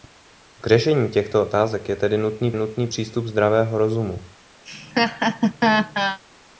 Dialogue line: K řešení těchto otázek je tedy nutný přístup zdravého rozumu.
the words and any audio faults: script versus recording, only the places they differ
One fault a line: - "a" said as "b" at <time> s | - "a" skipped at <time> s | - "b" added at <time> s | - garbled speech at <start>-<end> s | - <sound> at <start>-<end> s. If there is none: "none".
- "nutný" added at 2.5 s
- laugh at 4.6-6.2 s